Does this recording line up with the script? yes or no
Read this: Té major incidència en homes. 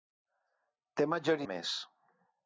no